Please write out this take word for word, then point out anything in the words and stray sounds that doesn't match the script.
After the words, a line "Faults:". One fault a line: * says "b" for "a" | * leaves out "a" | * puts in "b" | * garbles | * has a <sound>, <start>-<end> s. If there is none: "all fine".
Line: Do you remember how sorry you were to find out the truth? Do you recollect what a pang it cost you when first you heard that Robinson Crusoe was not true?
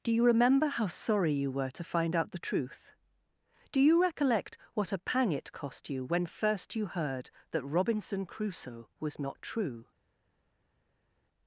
Do you remember how sorry you were to find out the truth? Do you recollect what a pang it cost you when first you heard that Robinson Crusoe was not true?
Faults:
all fine